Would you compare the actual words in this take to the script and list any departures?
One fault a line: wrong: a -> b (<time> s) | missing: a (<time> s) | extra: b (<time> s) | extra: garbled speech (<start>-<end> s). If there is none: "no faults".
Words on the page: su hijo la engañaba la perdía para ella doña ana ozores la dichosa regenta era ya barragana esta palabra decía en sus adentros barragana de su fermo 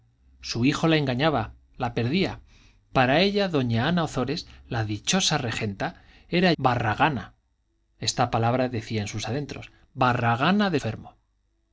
missing: ya (6.5 s)
missing: su (10.8 s)